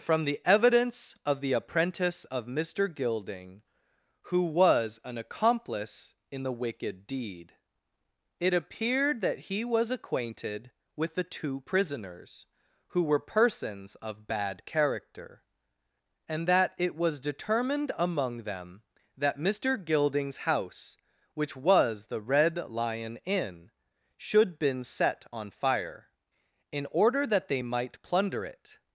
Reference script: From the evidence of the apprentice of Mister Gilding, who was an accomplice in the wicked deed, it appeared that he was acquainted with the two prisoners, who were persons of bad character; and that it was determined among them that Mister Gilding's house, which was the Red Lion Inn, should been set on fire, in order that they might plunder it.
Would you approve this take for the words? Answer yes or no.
yes